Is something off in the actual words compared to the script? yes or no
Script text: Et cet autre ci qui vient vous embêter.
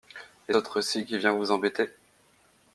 yes